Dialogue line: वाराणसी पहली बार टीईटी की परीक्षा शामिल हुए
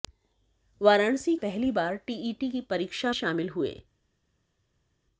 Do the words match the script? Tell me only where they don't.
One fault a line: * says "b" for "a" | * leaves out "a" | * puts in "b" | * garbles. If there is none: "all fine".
all fine